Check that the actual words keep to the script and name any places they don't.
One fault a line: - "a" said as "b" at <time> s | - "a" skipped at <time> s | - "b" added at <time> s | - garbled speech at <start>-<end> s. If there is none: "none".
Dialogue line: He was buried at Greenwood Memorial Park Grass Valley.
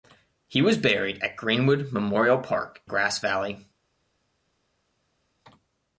none